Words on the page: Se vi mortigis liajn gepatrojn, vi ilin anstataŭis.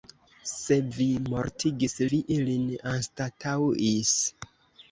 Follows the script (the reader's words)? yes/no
no